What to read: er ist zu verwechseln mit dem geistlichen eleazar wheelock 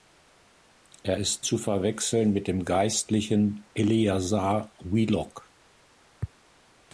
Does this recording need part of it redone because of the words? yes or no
no